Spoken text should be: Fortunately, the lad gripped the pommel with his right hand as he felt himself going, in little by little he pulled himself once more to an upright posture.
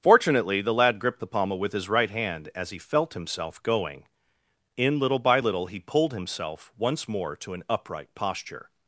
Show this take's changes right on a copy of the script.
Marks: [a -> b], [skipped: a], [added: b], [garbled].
Fortunately, the lad gripped the pommel with his right hand as he felt himself going, in little by little he pulled himself once more to an upright posture.